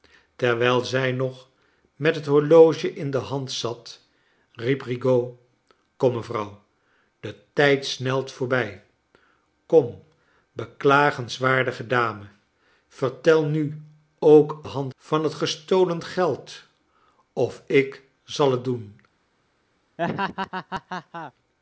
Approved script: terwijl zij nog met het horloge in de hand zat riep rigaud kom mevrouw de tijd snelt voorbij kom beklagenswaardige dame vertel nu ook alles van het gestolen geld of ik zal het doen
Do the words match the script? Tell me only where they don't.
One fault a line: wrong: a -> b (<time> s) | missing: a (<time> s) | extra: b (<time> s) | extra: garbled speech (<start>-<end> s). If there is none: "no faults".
wrong: alles -> hand (14.6 s)